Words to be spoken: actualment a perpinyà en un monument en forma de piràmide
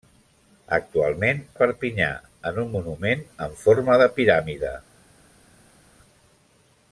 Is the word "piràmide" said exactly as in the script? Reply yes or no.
yes